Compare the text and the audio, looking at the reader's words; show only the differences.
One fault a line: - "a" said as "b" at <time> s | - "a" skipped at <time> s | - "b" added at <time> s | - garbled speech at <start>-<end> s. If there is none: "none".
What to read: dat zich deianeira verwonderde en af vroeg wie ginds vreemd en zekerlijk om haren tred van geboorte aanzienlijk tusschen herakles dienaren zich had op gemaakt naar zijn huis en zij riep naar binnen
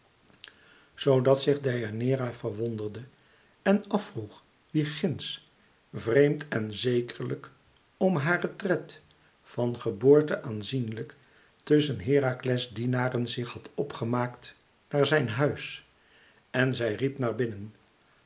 none